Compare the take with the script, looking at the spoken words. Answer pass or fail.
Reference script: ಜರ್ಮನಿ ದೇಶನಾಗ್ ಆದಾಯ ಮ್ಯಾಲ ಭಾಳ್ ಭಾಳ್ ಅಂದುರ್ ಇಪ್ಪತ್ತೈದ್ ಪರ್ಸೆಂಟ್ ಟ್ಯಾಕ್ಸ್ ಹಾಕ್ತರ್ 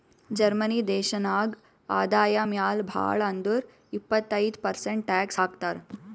fail